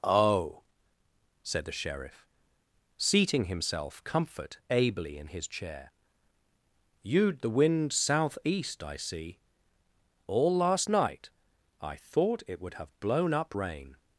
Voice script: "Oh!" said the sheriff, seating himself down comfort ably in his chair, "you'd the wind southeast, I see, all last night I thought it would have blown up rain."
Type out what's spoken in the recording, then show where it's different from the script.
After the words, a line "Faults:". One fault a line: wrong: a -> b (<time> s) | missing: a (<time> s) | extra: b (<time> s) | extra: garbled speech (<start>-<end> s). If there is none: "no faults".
"Oh!" said the sheriff, seating himself comfort ably in his chair, "you'd the wind southeast, I see, all last night I thought it would have blown up rain."
Faults:
missing: down (4.0 s)